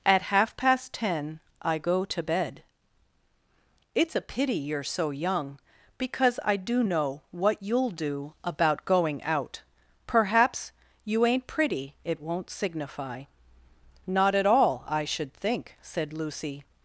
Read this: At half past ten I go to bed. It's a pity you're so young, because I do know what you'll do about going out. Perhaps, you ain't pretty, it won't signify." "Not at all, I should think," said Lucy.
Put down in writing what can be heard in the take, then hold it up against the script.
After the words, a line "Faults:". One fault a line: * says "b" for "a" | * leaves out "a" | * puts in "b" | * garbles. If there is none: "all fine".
At half past ten I go to bed. It's a pity you're so young, because I do know what you'll do about going out. Perhaps, you ain't pretty, it won't signify." "Not at all, I should think," said Lucy.
Faults:
all fine